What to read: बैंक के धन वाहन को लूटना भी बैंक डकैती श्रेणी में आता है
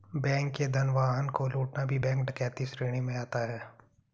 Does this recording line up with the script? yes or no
yes